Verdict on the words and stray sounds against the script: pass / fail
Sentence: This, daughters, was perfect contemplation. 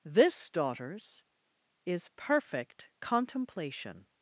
fail